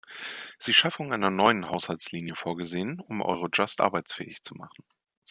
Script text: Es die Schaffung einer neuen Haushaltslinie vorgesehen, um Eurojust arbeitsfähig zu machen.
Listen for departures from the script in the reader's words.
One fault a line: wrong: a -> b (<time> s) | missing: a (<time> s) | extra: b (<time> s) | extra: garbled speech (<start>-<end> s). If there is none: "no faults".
no faults